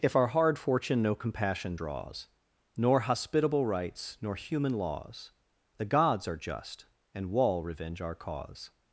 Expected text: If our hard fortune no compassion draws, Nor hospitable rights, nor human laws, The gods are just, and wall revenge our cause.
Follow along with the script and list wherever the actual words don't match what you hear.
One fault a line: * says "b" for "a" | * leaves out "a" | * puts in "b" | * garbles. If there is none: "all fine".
all fine